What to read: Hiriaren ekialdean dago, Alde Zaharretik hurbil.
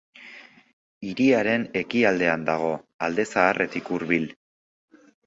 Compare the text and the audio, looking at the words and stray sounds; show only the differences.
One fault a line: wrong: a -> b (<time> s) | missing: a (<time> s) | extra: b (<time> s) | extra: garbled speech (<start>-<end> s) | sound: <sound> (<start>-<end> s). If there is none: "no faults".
no faults